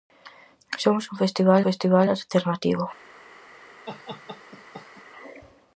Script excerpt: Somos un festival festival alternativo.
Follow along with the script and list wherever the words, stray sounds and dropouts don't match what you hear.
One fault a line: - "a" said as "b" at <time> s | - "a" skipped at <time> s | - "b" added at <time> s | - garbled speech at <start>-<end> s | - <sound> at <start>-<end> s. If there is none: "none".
- laugh at 3.9-5.0 s